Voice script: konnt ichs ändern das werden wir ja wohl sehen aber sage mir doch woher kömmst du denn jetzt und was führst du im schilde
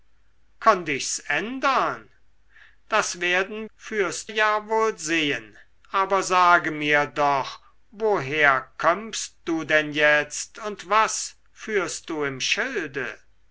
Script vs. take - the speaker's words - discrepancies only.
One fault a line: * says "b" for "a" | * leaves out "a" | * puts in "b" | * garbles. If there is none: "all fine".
* says "führst" for "wir"